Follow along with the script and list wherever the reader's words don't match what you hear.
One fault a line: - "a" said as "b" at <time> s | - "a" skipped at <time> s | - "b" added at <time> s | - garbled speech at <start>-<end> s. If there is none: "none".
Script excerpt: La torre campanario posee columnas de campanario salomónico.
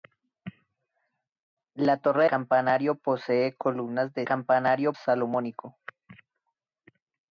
none